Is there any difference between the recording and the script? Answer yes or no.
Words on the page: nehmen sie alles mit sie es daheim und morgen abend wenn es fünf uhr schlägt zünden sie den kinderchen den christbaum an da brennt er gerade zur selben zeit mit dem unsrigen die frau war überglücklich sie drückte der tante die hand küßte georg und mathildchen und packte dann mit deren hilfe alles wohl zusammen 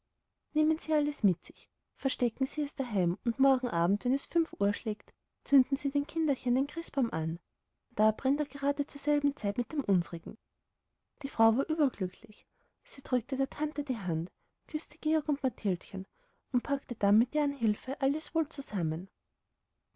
yes